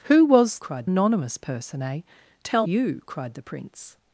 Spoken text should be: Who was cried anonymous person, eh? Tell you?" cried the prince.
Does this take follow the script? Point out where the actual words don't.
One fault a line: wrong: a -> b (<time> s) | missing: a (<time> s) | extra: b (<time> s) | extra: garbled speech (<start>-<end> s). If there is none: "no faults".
no faults